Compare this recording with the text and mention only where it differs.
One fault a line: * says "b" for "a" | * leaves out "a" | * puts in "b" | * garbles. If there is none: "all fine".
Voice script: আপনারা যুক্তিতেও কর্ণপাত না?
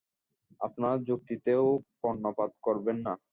* puts in "করবেন"